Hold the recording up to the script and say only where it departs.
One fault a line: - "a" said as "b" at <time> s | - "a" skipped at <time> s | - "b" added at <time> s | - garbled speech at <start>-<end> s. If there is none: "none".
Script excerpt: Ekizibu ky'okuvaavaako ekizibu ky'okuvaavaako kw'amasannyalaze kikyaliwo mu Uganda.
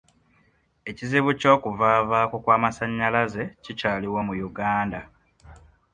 - "ekizibu ky'okuvaavaako" skipped at 2.4 s